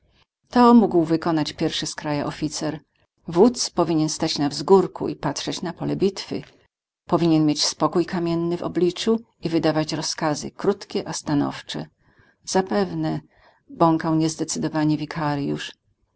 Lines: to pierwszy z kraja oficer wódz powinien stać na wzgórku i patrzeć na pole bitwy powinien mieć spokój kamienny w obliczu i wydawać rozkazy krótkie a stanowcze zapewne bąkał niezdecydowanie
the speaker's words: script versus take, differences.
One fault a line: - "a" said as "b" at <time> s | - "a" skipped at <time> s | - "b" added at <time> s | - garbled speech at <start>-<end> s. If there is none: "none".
- "mógł wykonać" added at 0.7 s